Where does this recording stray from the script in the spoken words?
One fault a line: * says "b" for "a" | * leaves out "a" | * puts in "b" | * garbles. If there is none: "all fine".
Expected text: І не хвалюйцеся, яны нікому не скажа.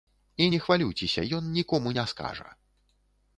* says "ён" for "яны"